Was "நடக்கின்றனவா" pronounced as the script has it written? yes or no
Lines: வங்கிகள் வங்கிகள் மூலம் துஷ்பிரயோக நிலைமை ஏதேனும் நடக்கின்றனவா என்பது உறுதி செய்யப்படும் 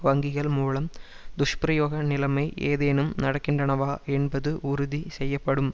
yes